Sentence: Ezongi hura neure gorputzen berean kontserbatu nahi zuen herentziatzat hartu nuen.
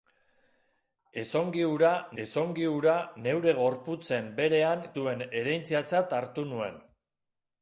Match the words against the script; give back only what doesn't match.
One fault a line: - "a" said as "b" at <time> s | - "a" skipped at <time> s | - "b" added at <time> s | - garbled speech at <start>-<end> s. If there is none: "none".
- "ezongi hura" added at 2.2 s
- "kontserbatu nahi" skipped at 4.9 s